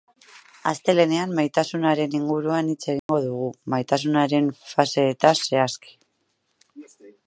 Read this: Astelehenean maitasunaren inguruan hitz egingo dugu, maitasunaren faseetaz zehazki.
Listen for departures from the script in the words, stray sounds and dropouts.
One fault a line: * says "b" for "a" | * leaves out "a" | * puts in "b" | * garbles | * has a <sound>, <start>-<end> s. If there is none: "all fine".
* has a dropout, 3.0-3.1 s